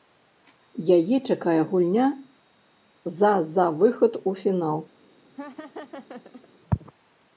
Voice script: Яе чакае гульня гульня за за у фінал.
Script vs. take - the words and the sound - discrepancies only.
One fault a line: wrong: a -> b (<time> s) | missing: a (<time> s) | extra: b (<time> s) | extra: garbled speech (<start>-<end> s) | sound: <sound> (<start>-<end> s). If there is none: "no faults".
wrong: гульня -> за (3.2 s)
wrong: за -> выхад (3.8 s)
sound: laugh (5.3-6.5 s)